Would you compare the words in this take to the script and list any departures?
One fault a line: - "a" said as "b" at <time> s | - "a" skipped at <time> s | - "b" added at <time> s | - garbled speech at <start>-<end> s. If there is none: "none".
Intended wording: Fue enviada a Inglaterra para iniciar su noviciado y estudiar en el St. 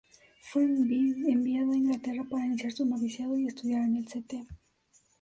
none